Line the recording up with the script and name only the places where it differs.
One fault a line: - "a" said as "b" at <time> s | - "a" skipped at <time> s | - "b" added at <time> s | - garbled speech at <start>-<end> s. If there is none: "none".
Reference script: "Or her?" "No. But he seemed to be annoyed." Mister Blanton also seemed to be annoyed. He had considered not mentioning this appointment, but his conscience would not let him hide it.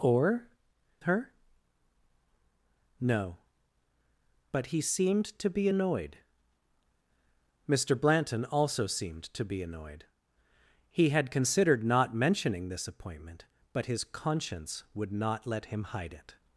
none